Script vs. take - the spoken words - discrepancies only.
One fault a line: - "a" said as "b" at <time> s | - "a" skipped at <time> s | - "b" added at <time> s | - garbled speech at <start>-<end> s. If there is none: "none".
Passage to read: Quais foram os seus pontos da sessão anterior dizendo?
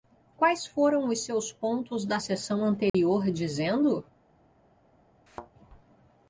none